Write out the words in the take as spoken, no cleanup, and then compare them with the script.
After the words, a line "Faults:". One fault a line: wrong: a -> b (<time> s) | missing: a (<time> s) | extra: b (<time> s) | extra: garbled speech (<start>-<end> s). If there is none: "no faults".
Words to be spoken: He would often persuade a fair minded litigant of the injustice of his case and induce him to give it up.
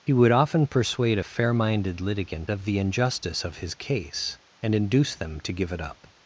He would often persuade a fair minded litigant of the injustice of his case and induce them to give it up.
Faults:
wrong: him -> them (5.1 s)